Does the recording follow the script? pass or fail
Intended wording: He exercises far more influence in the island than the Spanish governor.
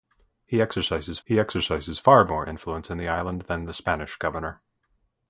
fail